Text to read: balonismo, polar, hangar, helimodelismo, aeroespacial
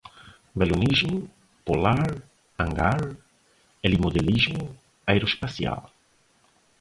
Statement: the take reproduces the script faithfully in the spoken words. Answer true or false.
true